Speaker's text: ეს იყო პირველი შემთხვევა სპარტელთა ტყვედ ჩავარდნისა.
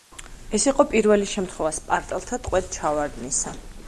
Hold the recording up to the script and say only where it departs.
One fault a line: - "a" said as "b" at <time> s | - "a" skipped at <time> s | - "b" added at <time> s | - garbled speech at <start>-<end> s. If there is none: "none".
none